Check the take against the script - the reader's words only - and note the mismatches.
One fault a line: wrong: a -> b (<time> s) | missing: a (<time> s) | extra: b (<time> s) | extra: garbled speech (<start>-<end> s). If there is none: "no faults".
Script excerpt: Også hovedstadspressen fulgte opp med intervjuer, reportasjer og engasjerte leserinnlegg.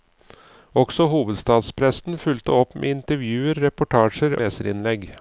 missing: og engasjerte (4.4 s)